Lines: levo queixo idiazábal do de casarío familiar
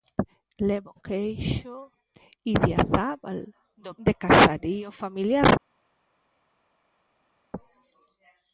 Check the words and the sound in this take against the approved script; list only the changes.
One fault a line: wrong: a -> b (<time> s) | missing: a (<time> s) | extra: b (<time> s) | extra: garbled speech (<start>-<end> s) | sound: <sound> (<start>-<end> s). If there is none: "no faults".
no faults